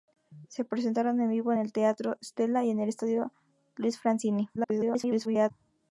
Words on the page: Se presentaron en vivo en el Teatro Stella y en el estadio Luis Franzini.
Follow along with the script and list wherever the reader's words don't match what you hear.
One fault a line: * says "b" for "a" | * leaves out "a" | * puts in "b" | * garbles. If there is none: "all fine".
* garbles